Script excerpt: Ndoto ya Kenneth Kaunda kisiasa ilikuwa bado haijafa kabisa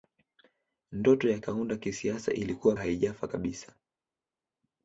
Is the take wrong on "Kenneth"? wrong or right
wrong